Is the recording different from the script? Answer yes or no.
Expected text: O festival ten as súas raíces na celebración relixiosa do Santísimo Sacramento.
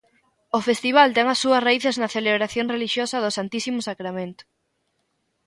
no